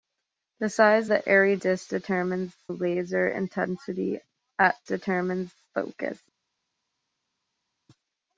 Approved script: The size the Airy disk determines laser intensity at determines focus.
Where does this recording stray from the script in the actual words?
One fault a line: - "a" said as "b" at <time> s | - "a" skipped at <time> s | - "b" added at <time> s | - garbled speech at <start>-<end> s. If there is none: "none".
none